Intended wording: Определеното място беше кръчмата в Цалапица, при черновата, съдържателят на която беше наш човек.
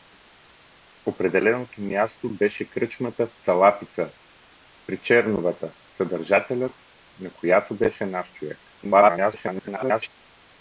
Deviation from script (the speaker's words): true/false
true